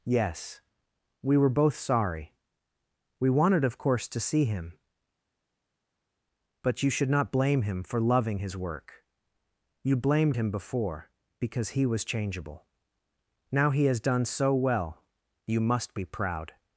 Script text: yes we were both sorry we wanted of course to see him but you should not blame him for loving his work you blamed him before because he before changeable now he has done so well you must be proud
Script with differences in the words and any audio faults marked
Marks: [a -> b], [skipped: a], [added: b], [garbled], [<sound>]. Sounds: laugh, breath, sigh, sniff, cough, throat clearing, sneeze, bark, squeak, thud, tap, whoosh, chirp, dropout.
yes we were both sorry we wanted of course to see him but you should not blame him for loving his work you blamed him before because he [before -> was] changeable now he has done so well you must be proud